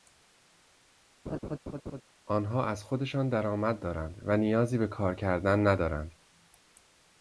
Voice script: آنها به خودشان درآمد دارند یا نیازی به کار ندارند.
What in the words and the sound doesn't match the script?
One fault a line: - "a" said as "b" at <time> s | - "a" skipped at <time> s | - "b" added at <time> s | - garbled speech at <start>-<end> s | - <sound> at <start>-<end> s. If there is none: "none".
- laugh at 1.3-2.0 s
- "به" said as "از" at 2.7 s
- "یا" said as "و" at 4.2 s
- "کردن" added at 5.1 s